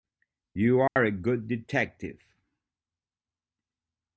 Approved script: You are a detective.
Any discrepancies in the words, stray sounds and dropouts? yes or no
yes